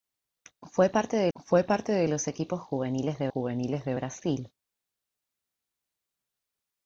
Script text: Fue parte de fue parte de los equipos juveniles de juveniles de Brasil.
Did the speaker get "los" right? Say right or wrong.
right